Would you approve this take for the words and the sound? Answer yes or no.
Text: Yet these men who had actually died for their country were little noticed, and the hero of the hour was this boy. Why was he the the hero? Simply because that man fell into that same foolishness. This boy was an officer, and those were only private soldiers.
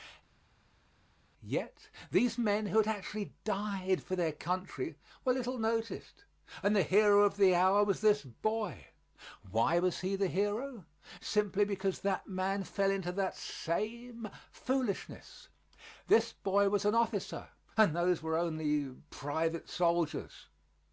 no